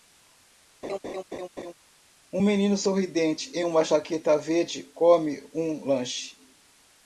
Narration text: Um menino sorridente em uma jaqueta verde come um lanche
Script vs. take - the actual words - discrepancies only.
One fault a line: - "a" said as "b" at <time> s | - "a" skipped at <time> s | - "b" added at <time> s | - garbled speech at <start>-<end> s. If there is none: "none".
none